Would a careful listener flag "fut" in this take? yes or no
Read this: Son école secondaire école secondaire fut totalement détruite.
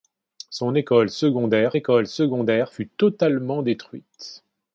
no